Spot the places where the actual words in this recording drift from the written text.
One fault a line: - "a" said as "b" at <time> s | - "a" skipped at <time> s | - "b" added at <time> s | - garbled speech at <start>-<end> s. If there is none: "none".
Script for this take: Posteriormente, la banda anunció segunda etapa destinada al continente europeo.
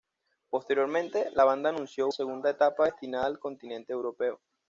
none